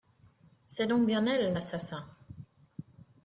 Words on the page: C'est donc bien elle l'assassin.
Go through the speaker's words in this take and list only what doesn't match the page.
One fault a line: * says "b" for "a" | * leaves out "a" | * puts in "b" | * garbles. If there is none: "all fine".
all fine